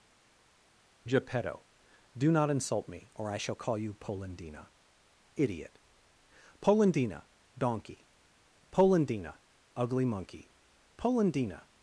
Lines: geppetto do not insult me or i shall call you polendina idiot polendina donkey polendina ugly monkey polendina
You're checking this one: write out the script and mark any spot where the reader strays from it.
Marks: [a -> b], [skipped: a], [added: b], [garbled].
geppetto do not insult me or i shall call you polendina idiot polendina donkey polendina ugly monkey polendina